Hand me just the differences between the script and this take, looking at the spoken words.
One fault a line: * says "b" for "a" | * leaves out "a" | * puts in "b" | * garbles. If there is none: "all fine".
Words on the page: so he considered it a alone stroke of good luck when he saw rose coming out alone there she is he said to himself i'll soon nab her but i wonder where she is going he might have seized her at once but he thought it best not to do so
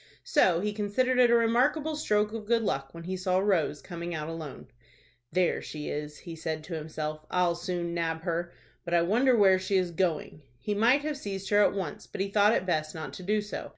* says "remarkable" for "alone"